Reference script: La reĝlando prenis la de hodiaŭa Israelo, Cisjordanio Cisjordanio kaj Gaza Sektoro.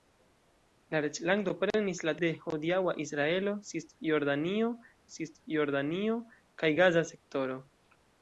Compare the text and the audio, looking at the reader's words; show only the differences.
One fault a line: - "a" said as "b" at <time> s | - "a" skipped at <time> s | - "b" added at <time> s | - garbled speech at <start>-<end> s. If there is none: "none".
none